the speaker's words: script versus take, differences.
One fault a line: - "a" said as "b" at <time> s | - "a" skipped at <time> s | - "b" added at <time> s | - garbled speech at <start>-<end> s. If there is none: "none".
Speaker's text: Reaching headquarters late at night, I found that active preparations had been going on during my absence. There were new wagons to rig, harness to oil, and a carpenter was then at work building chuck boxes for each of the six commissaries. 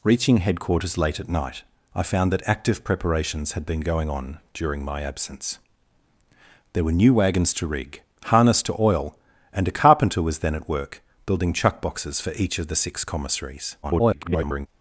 - garbled speech at 13.8-14.7 s